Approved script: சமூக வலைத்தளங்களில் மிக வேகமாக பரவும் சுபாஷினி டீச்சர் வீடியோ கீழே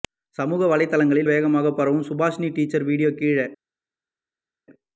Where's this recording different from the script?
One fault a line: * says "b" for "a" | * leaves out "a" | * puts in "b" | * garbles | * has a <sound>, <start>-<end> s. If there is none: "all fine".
* leaves out "மிக"